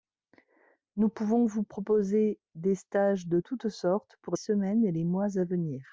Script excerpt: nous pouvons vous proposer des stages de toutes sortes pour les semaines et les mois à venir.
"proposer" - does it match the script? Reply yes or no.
yes